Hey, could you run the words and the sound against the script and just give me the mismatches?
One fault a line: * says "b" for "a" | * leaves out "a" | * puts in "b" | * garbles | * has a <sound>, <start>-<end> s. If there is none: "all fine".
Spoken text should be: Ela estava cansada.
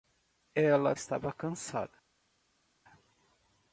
all fine